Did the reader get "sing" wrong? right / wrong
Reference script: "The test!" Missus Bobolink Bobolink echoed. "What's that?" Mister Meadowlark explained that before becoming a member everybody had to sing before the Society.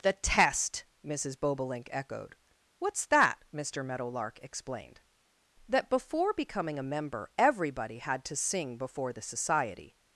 right